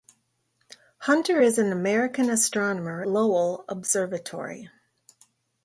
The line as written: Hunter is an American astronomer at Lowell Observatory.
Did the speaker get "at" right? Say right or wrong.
wrong